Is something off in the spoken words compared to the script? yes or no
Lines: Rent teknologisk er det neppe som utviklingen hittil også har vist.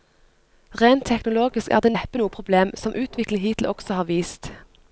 yes